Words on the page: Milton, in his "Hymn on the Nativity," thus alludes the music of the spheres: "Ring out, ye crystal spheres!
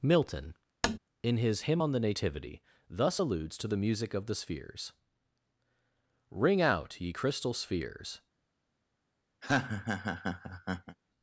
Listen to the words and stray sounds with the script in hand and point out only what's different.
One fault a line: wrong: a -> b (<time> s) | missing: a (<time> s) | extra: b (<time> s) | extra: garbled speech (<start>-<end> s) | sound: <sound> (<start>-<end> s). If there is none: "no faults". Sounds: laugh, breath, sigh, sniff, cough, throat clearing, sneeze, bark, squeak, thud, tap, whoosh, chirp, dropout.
sound: tap (0.8-1.0 s)
extra: to (3.6 s)
sound: laugh (9.4-11.0 s)